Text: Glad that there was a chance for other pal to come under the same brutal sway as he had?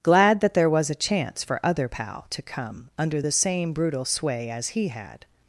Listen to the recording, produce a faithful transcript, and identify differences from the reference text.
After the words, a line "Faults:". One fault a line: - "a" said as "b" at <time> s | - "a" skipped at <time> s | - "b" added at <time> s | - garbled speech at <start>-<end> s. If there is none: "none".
Glad that there was a chance for other pal to come under the same brutal sway as he had?
Faults:
none